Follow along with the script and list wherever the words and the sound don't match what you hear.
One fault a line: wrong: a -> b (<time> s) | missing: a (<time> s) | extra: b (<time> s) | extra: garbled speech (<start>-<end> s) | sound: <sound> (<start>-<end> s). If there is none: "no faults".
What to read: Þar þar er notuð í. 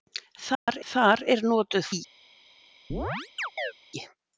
sound: dropout (0.5-0.7 s)
sound: chirp (2.9-3.7 s)